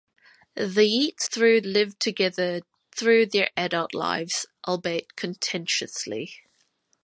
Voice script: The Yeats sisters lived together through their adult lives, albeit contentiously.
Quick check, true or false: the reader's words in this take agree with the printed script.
false